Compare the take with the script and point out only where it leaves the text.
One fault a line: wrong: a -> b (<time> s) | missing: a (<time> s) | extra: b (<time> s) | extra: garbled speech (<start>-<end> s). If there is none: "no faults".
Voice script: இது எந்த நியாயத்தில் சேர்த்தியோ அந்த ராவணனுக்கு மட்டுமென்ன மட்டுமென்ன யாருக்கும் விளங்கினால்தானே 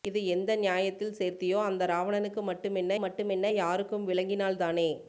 no faults